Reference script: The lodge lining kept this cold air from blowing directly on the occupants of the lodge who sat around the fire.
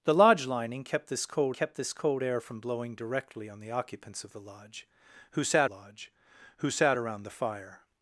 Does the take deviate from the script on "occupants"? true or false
false